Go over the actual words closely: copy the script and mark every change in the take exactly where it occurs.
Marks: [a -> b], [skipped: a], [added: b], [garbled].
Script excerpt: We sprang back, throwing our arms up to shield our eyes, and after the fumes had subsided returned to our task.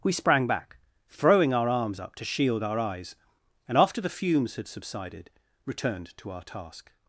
We sprang back, throwing our arms up to shield our eyes, and after the fumes had subsided returned to our task.